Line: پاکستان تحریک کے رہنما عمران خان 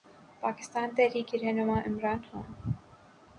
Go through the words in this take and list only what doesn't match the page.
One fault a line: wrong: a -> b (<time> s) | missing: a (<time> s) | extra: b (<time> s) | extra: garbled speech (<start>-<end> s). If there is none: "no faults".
no faults